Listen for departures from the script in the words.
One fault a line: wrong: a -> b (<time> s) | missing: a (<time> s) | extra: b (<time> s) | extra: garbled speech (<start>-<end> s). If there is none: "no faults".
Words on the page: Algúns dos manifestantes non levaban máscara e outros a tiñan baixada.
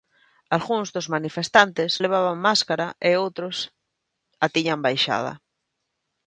missing: non (1.9 s)